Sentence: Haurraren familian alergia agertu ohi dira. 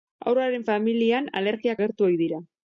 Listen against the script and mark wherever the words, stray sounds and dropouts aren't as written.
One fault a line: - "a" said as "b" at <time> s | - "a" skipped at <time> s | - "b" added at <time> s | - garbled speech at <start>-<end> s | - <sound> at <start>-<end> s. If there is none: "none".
none